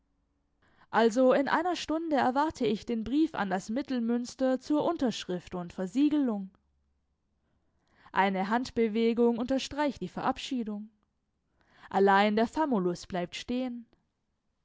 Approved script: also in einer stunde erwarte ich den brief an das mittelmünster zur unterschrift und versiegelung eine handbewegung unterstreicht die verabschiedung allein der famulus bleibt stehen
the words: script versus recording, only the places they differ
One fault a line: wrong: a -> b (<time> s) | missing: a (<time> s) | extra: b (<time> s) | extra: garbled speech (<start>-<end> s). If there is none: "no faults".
no faults